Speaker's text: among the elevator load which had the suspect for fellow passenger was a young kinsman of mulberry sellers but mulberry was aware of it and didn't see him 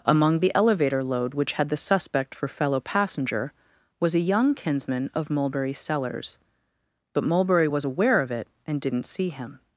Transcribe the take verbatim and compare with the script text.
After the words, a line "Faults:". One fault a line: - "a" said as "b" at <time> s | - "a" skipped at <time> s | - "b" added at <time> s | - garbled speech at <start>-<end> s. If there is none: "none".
among the elevator load which had the suspect for fellow passenger was a young kinsman of mulberry sellers but mulberry was aware of it and didn't see him
Faults:
none